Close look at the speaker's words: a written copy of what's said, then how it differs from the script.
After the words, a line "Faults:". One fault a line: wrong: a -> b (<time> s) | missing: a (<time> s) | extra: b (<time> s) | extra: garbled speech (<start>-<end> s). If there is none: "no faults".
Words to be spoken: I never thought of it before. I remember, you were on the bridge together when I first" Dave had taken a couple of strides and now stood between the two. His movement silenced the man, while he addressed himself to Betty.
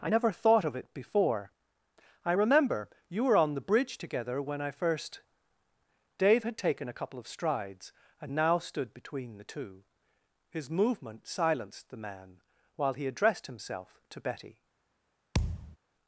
I never thought of it before. I remember, you were on the bridge together when I first" Dave had taken a couple of strides and now stood between the two. His movement silenced the man, while he addressed himself to Betty.
Faults:
no faults